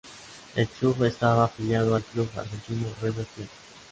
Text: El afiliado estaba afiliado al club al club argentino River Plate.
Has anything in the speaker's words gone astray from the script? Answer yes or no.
yes